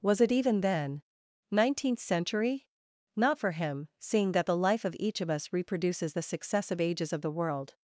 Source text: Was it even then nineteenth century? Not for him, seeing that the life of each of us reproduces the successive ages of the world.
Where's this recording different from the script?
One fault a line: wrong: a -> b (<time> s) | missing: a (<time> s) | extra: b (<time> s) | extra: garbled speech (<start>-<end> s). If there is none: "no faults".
no faults